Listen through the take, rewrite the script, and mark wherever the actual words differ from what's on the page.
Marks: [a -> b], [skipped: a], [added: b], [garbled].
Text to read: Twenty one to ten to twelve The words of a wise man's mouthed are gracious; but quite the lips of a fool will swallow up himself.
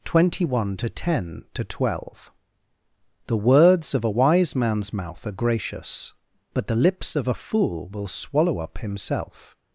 Twenty one to ten to twelve The words of a wise man's [mouthed -> mouth] are gracious; but [skipped: quite] the lips of a fool will swallow up himself.